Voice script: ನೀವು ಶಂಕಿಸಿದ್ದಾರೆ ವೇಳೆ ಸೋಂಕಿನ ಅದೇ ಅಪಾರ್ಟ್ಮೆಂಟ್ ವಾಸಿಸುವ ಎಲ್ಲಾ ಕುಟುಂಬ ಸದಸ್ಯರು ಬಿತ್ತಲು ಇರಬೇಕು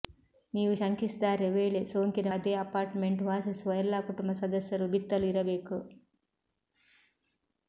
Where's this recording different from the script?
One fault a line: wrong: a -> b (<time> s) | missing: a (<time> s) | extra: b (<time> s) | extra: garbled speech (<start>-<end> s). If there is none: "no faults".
no faults